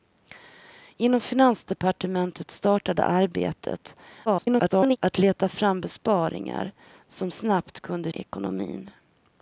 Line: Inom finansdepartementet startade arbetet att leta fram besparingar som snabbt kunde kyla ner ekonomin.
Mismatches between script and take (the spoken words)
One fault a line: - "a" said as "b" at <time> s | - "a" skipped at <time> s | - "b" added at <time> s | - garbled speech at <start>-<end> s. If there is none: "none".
- garbled speech at 4.3-5.0 s
- "kyla ner" skipped at 8.1 s